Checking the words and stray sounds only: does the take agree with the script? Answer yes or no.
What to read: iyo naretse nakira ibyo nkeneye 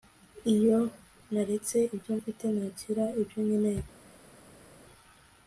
no